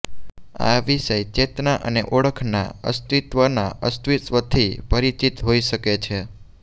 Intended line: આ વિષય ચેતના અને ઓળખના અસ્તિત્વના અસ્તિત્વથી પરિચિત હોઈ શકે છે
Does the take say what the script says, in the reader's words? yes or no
yes